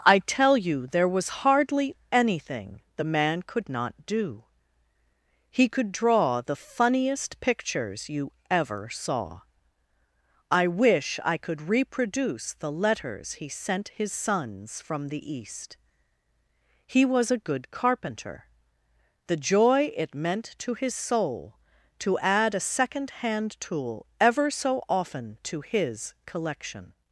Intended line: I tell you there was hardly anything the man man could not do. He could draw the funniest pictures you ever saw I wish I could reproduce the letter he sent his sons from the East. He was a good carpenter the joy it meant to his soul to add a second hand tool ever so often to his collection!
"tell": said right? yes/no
yes